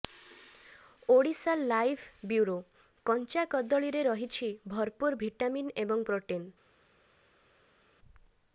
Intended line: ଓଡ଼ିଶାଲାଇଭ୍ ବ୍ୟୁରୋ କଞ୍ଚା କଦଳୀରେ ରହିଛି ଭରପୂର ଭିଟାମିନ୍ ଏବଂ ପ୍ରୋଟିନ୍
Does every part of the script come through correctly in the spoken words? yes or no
yes